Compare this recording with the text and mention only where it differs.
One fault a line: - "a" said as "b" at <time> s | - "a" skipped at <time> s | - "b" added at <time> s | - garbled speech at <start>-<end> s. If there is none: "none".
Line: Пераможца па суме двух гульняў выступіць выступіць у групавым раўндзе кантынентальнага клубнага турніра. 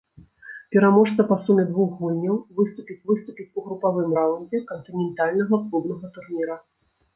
none